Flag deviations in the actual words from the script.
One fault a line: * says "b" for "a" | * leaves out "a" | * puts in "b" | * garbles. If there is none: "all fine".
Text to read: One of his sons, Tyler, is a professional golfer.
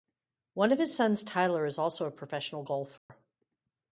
* puts in "also"